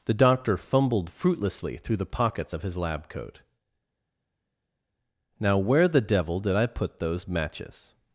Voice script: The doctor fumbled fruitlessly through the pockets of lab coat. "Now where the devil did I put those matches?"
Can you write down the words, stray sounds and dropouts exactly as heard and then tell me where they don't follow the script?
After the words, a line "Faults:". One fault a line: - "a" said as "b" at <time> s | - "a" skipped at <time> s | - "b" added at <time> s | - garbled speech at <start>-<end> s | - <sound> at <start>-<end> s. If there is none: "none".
The doctor fumbled fruitlessly through the pockets of his lab coat. "Now where the devil did I put those matches?"
Faults:
- "his" added at 2.6 s